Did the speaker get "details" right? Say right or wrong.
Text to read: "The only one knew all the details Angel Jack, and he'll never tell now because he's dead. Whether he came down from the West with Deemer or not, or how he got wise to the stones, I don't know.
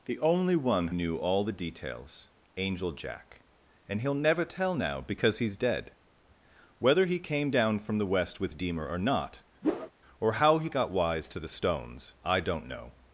right